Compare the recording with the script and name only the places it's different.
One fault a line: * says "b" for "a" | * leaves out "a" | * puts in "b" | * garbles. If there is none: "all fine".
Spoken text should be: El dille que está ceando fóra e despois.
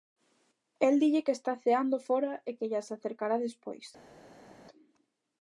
* puts in "que llas acercará"